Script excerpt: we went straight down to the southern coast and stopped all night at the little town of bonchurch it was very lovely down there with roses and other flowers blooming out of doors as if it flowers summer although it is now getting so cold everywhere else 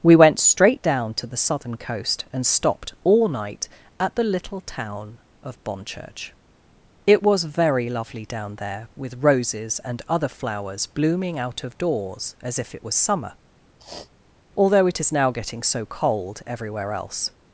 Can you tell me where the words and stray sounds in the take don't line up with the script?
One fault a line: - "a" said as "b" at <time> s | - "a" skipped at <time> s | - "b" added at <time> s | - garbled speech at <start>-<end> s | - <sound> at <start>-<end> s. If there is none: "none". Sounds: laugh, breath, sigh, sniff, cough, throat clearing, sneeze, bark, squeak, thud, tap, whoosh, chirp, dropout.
- "flowers" said as "was" at 12.8 s
- sniff at 13.8-14.1 s